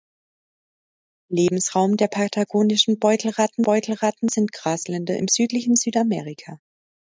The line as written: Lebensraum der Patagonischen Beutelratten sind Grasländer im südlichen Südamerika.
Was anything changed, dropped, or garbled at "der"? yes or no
no